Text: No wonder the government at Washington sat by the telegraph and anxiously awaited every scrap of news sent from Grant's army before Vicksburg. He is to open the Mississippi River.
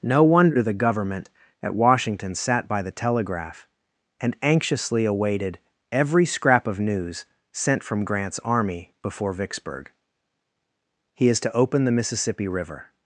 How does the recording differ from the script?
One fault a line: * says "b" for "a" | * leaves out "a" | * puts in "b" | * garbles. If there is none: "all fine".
all fine